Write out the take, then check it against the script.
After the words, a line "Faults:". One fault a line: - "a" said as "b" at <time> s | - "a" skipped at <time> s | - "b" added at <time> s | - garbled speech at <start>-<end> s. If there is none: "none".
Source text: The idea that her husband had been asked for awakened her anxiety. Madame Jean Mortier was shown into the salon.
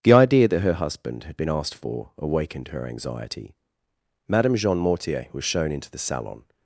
The idea that her husband had been asked for awakened her anxiety. Madame Jean Mortier was shown into the salon.
Faults:
none